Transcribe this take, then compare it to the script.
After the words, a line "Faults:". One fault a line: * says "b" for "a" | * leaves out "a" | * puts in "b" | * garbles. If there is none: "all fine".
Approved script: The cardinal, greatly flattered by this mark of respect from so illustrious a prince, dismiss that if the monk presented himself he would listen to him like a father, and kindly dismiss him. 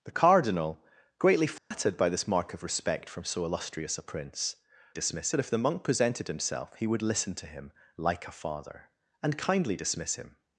The cardinal, greatly flattered by this mark of respect from so illustrious a prince, dismiss that if the monk presented himself he would listen to him like a father, and kindly dismiss him.
Faults:
all fine